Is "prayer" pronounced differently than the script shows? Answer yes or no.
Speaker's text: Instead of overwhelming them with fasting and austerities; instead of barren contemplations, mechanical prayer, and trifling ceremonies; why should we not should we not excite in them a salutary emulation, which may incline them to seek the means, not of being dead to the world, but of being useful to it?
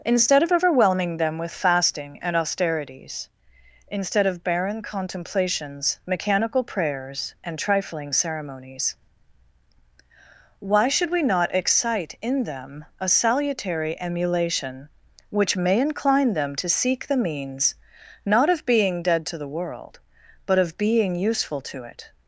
yes